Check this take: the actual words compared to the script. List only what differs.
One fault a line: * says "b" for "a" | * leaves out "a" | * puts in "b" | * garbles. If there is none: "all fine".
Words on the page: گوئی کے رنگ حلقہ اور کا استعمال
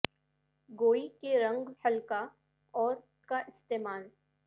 all fine